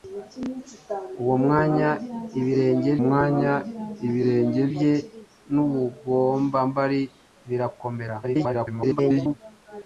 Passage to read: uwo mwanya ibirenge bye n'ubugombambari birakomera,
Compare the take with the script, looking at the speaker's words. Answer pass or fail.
fail